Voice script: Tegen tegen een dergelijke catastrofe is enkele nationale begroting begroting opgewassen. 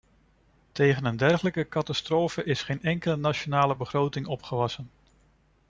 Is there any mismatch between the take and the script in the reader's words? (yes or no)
yes